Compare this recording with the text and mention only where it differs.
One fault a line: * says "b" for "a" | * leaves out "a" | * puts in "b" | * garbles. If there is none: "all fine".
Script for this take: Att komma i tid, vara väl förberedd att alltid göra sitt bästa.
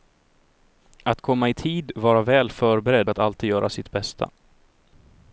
all fine